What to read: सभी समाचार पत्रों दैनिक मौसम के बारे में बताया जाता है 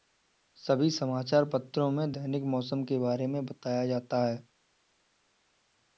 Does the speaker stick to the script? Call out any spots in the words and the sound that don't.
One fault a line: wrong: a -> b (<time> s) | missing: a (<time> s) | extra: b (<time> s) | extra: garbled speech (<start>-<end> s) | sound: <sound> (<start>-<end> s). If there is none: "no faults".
extra: में (1.9 s)